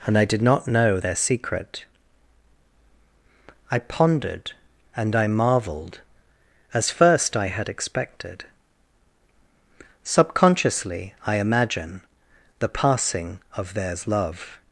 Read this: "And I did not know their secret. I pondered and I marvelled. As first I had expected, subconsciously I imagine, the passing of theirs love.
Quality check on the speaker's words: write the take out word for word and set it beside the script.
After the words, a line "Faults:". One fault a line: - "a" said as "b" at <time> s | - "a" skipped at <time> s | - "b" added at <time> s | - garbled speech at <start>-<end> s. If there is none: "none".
"And I did not know their secret. I pondered and I marvelled. As first I had expected, subconsciously I imagine, the passing of theirs love.
Faults:
none